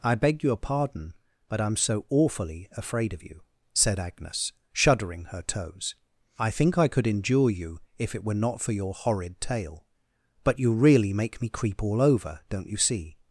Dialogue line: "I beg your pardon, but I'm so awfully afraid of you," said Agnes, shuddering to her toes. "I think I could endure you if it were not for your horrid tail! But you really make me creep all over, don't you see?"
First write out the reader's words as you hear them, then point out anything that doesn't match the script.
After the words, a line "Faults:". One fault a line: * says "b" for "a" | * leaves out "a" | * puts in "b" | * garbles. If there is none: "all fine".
"I beg your pardon, but I'm so awfully afraid of you," said Agnes, shuddering her toes. "I think I could endure you if it were not for your horrid tail! But you really make me creep all over, don't you see?"
Faults:
* leaves out "to"